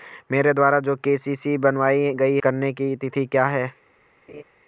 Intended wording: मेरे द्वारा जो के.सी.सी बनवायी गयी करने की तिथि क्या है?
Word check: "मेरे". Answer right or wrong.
right